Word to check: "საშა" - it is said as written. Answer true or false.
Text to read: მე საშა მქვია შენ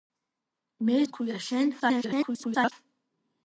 false